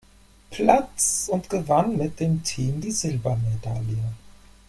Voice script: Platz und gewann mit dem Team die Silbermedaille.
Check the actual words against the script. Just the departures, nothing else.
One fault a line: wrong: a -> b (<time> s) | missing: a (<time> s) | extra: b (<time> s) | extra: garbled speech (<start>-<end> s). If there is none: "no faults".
no faults